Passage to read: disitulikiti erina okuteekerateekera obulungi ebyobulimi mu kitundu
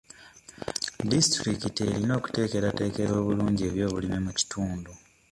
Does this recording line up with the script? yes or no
yes